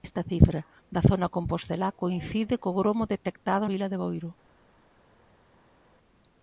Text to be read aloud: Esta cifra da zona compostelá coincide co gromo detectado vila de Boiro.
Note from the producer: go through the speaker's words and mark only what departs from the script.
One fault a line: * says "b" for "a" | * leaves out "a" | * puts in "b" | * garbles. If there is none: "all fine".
all fine